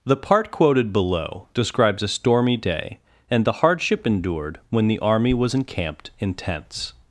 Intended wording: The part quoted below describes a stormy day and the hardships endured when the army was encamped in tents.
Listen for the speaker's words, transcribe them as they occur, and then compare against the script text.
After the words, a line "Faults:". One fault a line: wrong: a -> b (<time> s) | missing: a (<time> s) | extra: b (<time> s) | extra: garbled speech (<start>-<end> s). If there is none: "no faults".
The part quoted below describes a stormy day and the hardship endured when the army was encamped in tents.
Faults:
wrong: hardships -> hardship (3.5 s)